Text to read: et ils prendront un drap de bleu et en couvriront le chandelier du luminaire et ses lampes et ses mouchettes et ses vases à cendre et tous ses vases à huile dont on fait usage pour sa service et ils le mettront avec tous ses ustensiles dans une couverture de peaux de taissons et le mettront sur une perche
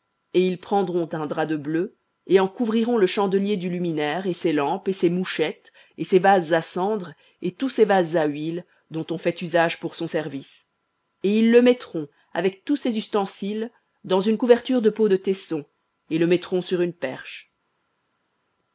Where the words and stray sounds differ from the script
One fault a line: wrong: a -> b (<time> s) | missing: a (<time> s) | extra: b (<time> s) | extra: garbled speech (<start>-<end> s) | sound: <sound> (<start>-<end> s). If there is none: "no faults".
wrong: sa -> son (9.9 s)